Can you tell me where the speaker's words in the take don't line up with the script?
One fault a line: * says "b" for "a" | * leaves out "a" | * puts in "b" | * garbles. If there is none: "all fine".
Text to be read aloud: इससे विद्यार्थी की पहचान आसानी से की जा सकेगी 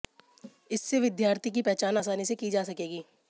all fine